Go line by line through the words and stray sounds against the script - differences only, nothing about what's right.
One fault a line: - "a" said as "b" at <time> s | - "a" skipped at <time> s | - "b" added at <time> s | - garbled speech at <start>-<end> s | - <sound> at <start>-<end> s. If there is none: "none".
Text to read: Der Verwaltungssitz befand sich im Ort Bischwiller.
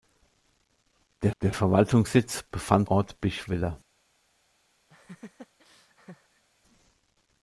- "der" added at 1.4 s
- "sich im" skipped at 2.9 s
- laugh at 4.9-6.4 s